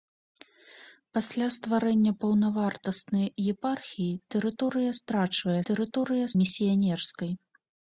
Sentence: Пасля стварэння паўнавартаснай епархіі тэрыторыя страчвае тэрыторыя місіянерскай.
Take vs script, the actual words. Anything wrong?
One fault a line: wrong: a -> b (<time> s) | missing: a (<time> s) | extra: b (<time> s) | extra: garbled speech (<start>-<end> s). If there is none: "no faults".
no faults